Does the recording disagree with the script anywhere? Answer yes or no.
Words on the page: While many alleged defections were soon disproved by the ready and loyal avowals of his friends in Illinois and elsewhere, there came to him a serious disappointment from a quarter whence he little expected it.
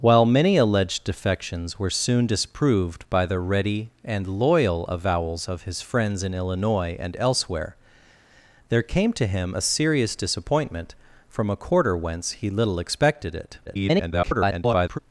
yes